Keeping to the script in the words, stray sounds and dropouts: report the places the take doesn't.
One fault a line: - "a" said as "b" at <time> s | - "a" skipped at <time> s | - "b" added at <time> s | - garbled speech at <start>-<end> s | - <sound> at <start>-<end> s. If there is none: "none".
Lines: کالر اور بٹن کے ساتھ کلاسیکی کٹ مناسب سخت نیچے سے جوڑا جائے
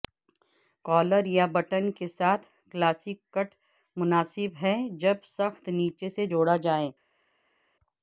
- "اور" said as "یا" at 1.3 s
- "ہے جب" added at 4.6 s